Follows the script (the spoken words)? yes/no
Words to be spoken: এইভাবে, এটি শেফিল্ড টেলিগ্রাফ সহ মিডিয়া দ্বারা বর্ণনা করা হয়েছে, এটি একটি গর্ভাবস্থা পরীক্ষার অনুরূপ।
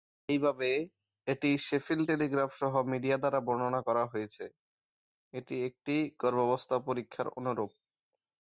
yes